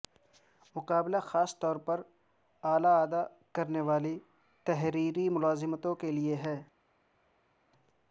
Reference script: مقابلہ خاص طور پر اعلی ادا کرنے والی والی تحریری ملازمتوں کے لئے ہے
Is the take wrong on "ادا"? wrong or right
right